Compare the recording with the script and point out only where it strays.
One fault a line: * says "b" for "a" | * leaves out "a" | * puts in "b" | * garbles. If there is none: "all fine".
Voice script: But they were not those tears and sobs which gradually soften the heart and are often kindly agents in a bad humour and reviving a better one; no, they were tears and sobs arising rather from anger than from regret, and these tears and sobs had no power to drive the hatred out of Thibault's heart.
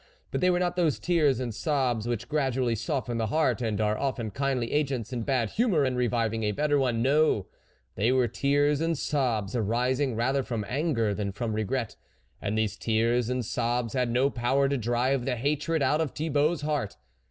all fine